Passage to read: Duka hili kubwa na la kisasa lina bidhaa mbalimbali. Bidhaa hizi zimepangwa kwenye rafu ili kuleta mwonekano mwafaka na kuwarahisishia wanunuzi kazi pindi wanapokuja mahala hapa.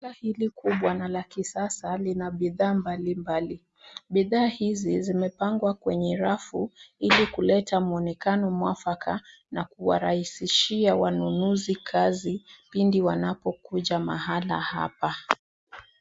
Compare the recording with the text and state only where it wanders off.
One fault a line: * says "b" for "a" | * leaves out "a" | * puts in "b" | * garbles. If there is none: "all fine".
all fine